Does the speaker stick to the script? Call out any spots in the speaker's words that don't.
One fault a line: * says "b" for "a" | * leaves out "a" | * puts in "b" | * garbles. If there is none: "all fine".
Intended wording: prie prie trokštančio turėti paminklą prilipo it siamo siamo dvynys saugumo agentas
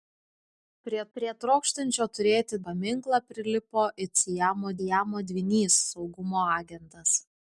all fine